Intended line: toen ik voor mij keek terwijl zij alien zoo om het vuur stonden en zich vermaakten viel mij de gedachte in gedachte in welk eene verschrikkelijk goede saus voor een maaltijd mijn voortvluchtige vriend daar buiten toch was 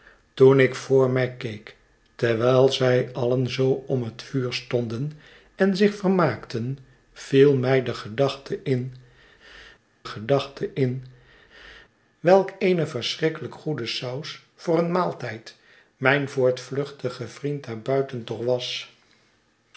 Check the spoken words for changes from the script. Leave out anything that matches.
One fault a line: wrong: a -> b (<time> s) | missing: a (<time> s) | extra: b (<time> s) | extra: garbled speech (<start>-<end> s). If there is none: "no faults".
no faults